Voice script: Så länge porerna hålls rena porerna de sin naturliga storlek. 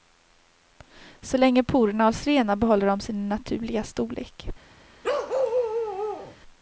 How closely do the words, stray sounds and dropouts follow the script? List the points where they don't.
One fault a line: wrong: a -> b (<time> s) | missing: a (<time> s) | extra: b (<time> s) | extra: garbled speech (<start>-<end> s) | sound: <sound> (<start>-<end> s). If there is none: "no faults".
wrong: porerna -> behåller (2.5 s)
sound: bark (5.0-6.4 s)